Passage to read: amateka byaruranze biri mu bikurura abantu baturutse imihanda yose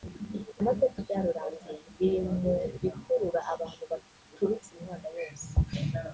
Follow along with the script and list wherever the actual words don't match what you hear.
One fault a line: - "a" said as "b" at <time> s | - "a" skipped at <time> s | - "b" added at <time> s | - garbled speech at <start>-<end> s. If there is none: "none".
none